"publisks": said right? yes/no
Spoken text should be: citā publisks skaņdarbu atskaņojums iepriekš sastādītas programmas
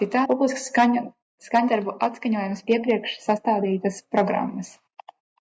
yes